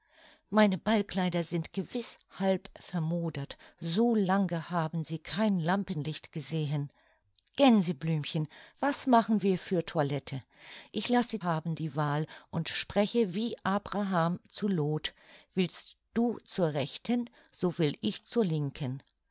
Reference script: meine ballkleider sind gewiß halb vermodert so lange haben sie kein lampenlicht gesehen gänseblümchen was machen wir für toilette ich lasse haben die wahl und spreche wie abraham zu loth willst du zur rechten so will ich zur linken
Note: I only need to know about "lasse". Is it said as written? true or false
true